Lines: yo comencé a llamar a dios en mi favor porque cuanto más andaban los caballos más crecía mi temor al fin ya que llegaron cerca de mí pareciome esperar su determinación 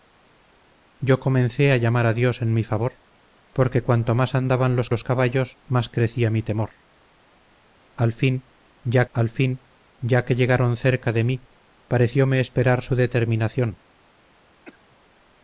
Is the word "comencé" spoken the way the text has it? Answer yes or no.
yes